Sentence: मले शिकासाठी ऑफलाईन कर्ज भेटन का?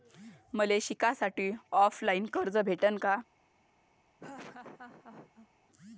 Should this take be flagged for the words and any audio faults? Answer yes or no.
yes